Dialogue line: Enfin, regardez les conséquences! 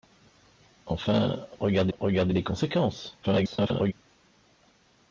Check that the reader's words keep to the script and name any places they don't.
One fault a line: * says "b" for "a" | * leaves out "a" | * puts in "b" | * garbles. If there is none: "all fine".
* puts in "regardez"
* garbles